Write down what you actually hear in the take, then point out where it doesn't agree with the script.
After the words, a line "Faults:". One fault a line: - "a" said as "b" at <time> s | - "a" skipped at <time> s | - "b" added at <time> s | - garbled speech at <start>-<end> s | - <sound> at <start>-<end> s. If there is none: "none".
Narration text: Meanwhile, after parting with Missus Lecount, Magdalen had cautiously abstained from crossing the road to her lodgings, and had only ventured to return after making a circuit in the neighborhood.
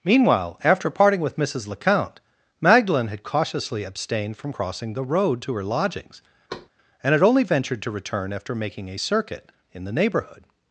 Meanwhile, after parting with Missus Lecount, Magdalen had cautiously abstained from crossing the road to her lodgings, and had only ventured to return after making a circuit in the neighborhood.
Faults:
- thud at 6.5-6.7 s